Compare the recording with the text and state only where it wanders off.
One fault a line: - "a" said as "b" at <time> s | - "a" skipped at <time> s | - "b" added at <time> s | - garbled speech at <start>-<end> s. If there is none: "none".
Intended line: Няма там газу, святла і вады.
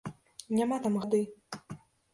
- "газу святла і" skipped at 0.9 s